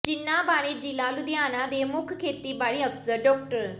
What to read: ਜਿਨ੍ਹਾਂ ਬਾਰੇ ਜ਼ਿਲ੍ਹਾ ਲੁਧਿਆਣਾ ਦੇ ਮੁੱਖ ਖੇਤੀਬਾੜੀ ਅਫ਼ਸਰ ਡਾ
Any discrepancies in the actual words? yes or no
no